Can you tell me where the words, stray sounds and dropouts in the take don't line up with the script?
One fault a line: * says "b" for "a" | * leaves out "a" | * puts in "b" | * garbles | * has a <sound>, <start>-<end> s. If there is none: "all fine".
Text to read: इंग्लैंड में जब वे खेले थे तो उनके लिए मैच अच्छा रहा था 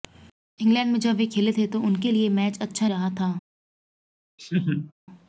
* has a laugh, 4.4-4.9 s